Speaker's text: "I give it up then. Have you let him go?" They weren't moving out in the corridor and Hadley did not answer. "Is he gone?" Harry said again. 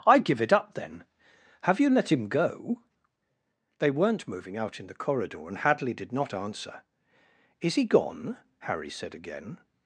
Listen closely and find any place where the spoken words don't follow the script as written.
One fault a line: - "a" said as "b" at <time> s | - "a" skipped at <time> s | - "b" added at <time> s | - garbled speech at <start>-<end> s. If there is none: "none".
none